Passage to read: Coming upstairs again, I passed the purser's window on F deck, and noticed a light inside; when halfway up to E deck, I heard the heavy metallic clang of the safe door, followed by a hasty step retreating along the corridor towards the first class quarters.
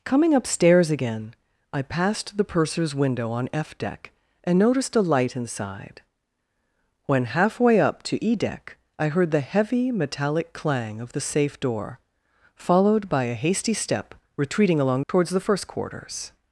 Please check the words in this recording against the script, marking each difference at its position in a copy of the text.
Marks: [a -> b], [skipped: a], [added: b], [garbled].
Coming upstairs again, I passed the purser's window on F deck, and noticed a light inside; when halfway up to E deck, I heard the heavy metallic clang of the safe door, followed by a hasty step retreating along [skipped: the corridor] towards the first [skipped: class] quarters.